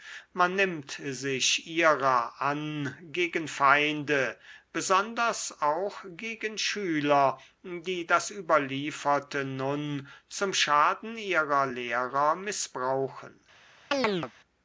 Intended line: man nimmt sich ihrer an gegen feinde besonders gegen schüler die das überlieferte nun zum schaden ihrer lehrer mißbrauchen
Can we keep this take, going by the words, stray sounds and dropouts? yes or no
no